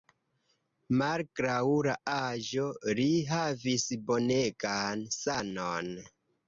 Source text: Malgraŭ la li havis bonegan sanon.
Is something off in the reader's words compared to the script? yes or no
yes